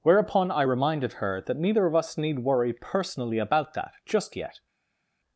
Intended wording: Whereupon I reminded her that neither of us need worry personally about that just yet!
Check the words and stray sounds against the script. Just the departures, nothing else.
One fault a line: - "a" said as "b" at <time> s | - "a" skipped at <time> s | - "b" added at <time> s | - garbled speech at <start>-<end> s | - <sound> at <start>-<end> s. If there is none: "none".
none